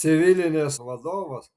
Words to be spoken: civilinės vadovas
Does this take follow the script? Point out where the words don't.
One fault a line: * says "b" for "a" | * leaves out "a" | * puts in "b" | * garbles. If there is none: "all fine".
all fine